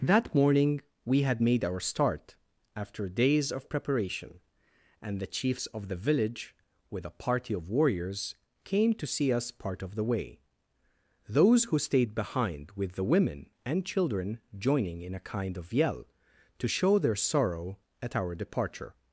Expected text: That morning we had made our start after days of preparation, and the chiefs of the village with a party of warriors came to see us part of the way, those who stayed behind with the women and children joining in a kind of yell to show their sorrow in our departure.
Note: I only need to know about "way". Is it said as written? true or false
true